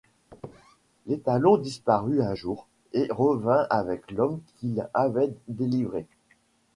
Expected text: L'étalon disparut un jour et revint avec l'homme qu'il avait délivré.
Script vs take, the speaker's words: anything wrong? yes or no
no